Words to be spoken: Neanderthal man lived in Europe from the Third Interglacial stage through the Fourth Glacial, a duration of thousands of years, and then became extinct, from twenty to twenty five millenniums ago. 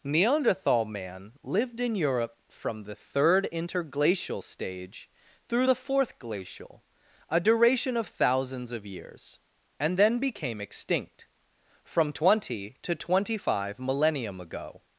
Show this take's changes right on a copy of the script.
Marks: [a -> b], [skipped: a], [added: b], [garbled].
Neanderthal man lived in Europe from the Third Interglacial stage through the Fourth Glacial, a duration of thousands of years, and then became extinct, from twenty to twenty five [millenniums -> millennium] ago.